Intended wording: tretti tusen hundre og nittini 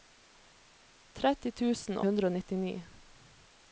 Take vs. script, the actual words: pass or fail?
pass